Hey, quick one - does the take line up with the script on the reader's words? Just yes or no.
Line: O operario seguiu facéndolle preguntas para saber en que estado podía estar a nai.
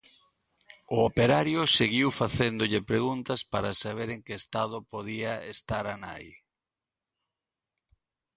yes